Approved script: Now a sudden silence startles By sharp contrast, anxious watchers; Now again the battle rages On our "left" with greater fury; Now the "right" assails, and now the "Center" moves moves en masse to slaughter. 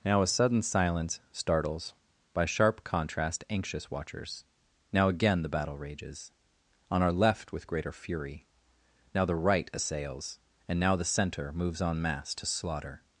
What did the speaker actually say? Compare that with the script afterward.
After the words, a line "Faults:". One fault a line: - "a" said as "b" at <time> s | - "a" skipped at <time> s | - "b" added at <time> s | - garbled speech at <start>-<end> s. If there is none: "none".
Now a sudden silence startles By sharp contrast, anxious watchers; Now again the battle rages On our "left" with greater fury; Now the "right" assails, and now the "Center" moves en masse to slaughter.
Faults:
- "moves" skipped at 11.8 s